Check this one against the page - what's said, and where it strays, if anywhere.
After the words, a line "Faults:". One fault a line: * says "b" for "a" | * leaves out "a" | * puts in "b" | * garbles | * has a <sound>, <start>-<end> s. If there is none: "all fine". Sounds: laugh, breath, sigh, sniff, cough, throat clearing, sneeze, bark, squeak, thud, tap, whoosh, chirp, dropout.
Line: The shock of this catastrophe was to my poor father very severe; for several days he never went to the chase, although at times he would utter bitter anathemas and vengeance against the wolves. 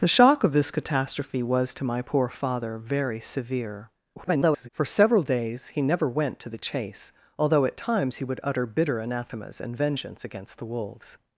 The shock of this catastrophe was to my poor father very severe; [garbled] for several days he never went to the chase, although at times he would utter bitter anathemas and vengeance against the wolves.
Faults:
* garbles